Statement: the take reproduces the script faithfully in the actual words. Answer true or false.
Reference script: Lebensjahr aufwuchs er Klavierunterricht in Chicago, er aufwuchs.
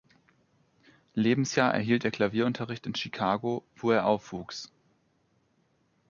false